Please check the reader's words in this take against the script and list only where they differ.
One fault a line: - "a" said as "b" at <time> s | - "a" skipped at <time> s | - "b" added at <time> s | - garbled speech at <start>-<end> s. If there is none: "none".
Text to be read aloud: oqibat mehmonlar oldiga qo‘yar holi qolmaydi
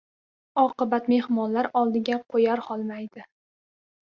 - "holi" skipped at 2.7 s